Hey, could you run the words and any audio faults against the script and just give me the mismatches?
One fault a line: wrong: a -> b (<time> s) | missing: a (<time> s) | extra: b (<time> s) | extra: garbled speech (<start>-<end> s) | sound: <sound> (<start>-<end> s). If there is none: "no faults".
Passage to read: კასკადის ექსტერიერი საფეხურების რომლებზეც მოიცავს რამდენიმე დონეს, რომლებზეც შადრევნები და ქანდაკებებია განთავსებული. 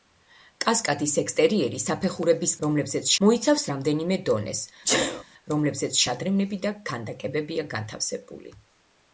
sound: sneeze (4.8-5.2 s)